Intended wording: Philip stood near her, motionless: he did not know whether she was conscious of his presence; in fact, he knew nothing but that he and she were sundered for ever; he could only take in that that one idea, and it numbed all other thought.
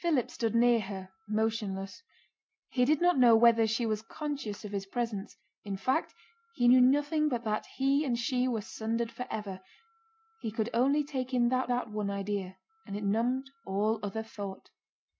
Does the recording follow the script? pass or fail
pass